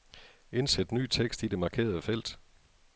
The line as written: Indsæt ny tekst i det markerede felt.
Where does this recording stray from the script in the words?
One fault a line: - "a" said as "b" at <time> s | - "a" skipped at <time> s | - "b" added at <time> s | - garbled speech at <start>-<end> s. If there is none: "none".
none